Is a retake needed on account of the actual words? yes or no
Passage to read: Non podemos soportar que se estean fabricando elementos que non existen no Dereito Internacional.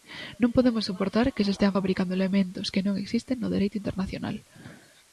no